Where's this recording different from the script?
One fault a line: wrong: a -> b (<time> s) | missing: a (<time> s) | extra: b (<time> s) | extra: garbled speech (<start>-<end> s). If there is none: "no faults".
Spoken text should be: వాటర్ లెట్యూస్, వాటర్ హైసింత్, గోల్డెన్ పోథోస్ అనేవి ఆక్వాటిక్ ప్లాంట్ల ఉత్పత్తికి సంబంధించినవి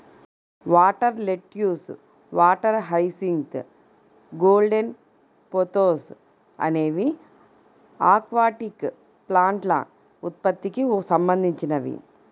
no faults